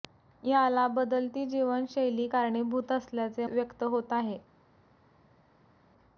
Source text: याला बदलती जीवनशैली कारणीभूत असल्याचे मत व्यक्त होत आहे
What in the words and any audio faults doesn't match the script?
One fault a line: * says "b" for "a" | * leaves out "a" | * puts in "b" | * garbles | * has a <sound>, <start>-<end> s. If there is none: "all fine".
* leaves out "मत"